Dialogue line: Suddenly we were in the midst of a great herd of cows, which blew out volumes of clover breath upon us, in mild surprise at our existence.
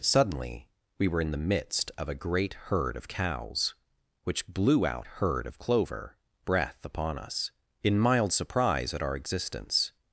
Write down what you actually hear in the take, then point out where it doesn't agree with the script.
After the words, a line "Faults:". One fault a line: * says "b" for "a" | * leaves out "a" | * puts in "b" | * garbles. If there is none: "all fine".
Suddenly we were in the midst of a great herd of cows, which blew out herd of clover breath upon us, in mild surprise at our existence.
Faults:
* says "herd" for "volumes"